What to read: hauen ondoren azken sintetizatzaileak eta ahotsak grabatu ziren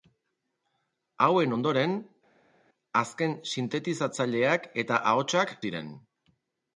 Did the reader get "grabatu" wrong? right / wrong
wrong